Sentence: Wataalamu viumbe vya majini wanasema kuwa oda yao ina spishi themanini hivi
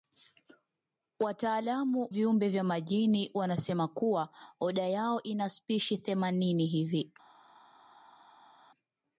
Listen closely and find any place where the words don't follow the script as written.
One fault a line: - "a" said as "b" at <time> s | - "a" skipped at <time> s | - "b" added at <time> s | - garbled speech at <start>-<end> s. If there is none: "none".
none